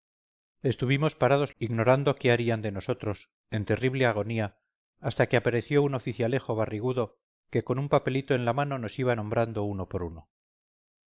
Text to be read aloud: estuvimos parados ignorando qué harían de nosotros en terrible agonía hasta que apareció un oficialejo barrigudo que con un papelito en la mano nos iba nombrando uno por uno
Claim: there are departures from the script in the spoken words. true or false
false